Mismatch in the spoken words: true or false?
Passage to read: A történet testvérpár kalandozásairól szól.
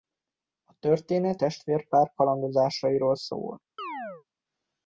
false